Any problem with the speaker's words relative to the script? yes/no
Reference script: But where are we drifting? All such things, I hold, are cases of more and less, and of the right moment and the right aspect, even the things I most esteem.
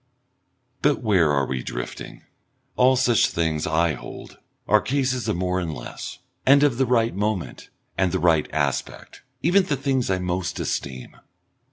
no